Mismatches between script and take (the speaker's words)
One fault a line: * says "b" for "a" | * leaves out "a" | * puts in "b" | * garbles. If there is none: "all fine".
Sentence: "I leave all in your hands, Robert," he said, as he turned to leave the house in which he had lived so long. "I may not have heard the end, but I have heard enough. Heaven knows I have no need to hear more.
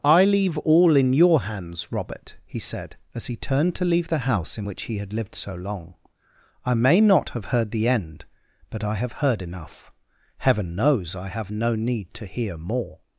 all fine